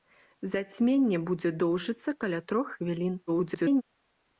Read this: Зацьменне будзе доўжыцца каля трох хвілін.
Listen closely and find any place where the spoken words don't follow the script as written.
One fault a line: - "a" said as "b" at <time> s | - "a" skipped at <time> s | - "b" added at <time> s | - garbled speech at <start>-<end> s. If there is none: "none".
- garbled speech at 3.3-3.8 s